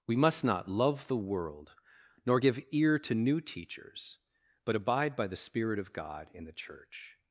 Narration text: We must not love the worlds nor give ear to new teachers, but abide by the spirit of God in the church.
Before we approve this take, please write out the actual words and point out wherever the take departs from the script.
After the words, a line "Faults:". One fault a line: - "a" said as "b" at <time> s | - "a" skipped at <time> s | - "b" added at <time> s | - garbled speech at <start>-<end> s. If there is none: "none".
We must not love the world nor give ear to new teachers, but abide by the spirit of God in the church.
Faults:
- "worlds" said as "world" at 1.2 s